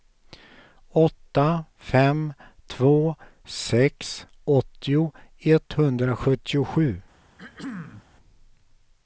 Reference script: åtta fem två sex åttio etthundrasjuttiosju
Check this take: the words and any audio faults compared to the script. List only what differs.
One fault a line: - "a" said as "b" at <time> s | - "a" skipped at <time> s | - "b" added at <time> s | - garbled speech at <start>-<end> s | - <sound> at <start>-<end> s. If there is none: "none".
- throat clearing at 7.4-8.1 s